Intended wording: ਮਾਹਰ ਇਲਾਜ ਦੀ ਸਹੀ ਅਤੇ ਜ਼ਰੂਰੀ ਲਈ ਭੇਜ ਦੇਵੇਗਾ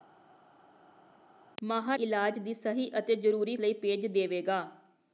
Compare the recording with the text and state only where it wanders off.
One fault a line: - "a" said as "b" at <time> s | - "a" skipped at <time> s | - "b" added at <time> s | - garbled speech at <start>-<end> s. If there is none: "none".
none